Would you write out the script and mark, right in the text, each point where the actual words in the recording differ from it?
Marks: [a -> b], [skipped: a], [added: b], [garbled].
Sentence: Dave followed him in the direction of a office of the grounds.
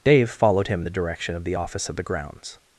Dave followed him in the direction of [a -> the] office of the grounds.